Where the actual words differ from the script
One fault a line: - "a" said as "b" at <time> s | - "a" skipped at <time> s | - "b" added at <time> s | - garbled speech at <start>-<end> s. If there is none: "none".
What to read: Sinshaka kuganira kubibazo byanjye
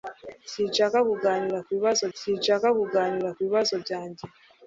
- "sinshaka kuganira kubibazo" added at 2.2 s